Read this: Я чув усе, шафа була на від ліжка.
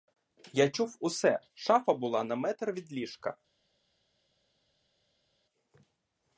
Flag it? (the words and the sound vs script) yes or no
yes